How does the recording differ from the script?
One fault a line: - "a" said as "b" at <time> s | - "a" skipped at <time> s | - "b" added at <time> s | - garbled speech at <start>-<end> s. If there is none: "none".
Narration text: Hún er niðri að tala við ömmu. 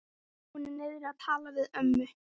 none